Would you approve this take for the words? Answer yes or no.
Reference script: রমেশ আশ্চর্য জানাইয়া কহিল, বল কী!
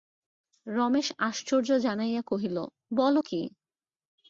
yes